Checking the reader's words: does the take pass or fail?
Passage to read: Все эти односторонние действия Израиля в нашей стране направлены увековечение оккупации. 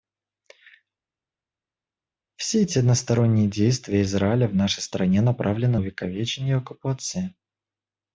pass